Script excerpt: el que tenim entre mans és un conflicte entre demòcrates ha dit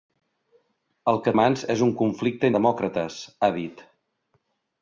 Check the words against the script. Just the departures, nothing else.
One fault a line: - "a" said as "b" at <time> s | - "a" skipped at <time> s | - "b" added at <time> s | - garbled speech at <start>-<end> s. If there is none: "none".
- "tenim entre" skipped at 1.3 s
- "entre" skipped at 2.5 s